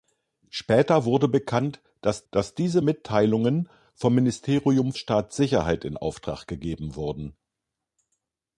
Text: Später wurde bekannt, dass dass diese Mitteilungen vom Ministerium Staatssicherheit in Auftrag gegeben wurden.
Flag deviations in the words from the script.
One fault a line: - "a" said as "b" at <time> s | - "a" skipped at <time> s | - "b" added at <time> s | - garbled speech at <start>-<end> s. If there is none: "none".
none